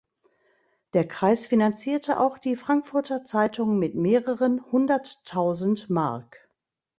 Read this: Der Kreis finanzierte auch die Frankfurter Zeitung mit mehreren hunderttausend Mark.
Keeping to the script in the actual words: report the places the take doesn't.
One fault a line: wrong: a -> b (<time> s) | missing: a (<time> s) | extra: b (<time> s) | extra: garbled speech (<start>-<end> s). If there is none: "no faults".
no faults